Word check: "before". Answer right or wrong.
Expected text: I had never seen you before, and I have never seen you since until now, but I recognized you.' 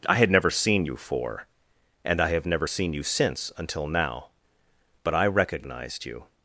wrong